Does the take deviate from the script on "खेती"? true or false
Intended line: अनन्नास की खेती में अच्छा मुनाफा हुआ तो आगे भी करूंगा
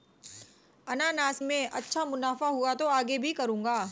true